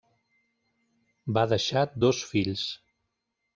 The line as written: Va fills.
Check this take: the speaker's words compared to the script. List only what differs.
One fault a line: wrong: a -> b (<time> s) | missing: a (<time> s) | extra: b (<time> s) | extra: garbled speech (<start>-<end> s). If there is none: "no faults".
extra: deixar dos (1.5 s)